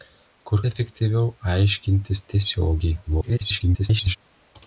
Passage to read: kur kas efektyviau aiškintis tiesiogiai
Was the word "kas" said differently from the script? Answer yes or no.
yes